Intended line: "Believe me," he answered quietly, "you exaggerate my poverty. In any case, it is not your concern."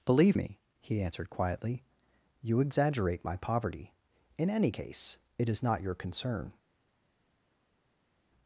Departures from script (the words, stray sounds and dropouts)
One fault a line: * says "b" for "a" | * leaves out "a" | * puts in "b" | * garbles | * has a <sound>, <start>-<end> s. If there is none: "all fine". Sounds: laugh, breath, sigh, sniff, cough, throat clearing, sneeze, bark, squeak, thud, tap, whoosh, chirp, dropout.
all fine